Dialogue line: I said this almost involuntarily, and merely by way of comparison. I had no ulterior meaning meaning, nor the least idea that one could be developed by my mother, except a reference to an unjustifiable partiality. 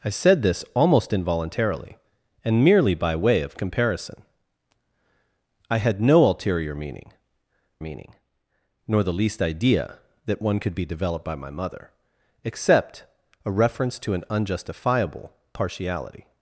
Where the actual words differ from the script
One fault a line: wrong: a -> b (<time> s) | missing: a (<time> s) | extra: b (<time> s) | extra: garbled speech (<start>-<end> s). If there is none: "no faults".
no faults